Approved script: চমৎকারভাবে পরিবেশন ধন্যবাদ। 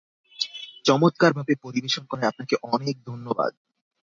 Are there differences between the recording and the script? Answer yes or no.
yes